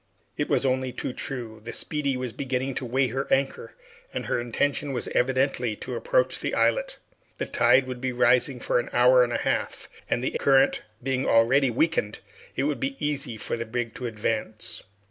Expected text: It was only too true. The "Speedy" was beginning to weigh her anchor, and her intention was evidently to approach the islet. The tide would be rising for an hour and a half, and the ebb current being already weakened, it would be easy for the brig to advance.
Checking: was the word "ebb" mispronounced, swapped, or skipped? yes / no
yes